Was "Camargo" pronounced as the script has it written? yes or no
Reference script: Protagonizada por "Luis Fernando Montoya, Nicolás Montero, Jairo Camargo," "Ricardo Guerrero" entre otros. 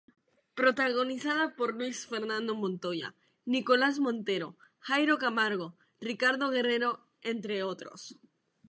yes